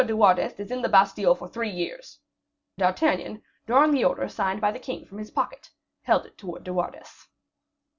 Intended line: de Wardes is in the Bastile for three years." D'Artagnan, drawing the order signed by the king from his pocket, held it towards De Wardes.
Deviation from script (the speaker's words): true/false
false